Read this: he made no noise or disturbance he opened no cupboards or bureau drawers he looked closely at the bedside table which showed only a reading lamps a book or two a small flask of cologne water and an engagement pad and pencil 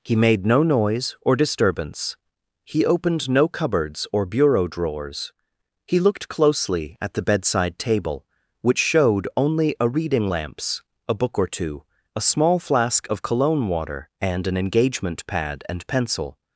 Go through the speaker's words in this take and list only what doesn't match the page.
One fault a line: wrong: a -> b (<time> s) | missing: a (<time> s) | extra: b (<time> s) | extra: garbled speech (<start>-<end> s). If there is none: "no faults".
no faults